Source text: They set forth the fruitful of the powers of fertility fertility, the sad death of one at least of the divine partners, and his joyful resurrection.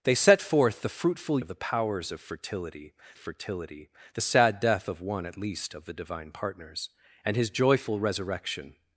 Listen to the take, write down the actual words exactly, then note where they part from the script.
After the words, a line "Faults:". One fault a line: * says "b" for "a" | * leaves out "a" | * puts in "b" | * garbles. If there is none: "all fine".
They set forth the fruitful of the powers of fertility fertility, the sad death of one at least of the divine partners, and his joyful resurrection.
Faults:
all fine